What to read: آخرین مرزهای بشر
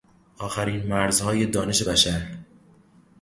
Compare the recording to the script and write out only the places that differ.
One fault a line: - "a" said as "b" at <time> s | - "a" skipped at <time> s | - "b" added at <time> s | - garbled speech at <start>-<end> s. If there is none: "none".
- "دانش" added at 1.4 s